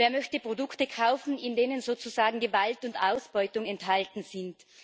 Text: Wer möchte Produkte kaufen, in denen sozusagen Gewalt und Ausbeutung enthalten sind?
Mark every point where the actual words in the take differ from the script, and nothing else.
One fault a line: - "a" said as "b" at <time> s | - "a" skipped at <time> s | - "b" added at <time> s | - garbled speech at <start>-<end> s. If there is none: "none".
none